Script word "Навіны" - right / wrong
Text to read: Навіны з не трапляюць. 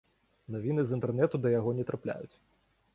right